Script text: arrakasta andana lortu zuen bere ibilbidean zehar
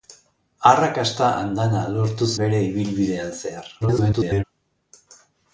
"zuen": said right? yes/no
no